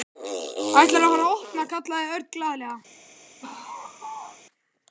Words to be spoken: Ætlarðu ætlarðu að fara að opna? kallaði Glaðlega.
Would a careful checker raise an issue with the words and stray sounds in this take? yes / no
yes